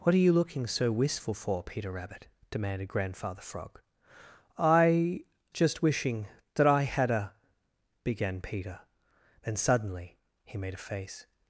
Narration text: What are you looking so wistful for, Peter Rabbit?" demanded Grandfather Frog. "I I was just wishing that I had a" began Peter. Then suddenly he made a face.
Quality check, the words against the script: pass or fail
fail